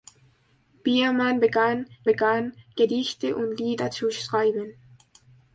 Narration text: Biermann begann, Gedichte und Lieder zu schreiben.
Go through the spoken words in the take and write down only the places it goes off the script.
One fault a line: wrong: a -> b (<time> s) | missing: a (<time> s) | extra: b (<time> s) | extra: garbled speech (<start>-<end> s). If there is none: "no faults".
extra: begann (2.0 s)